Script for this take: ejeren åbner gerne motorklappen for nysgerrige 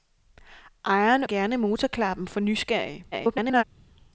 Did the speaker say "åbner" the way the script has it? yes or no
no